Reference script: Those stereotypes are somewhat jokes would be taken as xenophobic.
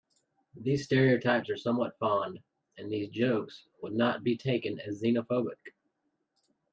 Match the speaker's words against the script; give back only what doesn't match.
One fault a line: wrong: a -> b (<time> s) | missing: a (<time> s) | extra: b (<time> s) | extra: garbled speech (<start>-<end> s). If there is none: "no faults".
wrong: Those -> These (0.6 s)
extra: fond and these (2.0 s)
extra: not (3.9 s)